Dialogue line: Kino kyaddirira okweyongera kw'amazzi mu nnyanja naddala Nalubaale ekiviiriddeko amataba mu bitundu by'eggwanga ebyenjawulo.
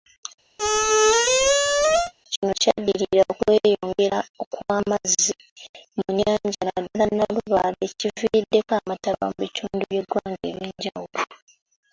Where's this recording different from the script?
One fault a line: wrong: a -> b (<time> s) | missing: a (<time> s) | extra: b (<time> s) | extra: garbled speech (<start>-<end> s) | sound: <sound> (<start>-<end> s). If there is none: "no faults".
sound: squeak (0.6-2.1 s)